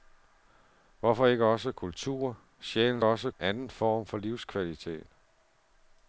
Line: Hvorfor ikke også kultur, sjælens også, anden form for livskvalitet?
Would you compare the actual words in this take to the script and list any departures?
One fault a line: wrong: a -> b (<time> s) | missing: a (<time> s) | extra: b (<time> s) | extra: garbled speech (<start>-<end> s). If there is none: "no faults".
no faults